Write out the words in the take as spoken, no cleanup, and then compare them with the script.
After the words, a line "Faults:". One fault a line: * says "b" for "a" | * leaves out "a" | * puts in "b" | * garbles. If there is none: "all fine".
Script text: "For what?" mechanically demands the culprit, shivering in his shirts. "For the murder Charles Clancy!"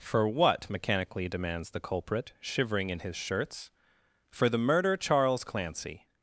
"For what?" mechanically demands the culprit, shivering in his shirts. "For the murder Charles Clancy!"
Faults:
all fine